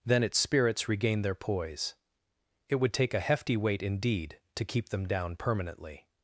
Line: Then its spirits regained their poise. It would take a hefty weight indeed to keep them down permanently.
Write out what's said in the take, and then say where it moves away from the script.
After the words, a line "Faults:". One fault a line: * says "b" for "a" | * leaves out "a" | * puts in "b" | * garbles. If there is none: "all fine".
Then its spirits regained their poise. It would take a hefty weight indeed to keep them down permanently.
Faults:
all fine